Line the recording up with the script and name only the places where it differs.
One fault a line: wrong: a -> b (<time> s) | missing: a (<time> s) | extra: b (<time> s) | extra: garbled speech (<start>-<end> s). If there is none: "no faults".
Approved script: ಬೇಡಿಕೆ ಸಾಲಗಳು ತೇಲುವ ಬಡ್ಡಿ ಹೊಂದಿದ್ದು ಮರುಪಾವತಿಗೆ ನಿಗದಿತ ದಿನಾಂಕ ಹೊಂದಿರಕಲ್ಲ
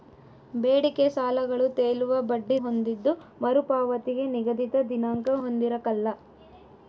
no faults